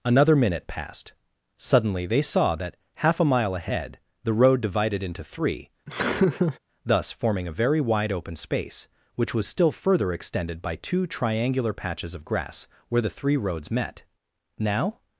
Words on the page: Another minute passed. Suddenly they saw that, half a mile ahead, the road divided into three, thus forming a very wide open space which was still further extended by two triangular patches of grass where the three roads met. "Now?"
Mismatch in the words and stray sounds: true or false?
true